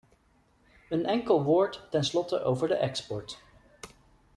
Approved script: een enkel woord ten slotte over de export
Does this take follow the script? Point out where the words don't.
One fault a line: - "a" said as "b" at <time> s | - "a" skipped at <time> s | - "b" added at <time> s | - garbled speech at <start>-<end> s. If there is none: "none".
none